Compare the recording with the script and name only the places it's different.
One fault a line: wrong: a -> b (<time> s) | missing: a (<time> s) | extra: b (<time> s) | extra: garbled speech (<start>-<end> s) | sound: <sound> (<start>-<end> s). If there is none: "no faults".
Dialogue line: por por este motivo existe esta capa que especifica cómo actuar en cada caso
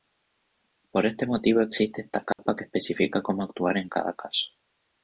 missing: por (1.1 s)
sound: dropout (2.3-2.4 s)